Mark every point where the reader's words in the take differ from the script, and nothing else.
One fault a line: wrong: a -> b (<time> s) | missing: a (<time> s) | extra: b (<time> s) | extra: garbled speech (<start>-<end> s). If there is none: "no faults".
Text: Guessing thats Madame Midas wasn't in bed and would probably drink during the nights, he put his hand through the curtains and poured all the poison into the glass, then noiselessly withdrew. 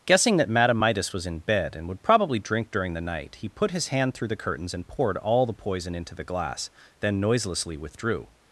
wrong: thats -> that (0.4 s)
wrong: wasn't -> was (1.1 s)
wrong: nights -> night (3.0 s)